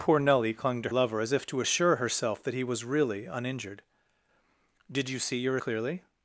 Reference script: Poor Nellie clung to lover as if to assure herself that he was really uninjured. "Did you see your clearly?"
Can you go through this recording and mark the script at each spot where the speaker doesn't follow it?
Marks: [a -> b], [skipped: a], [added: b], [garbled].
Poor Nellie clung to lover as if to assure herself that he was really uninjured. "Did you see your clearly?"